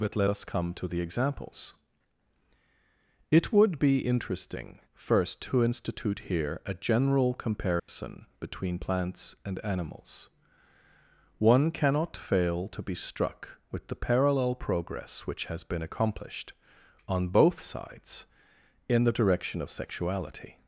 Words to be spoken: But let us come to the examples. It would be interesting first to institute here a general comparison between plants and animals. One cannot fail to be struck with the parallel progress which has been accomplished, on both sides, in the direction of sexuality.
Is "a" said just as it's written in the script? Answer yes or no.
yes